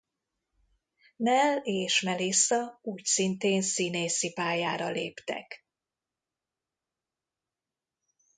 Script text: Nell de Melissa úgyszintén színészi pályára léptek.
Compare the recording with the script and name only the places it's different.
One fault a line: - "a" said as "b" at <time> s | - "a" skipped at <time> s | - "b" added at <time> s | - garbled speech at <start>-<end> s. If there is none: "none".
- "de" said as "és" at 1.6 s